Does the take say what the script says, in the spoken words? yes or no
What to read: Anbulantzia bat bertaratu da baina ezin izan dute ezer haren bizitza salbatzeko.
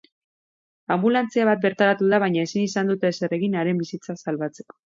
no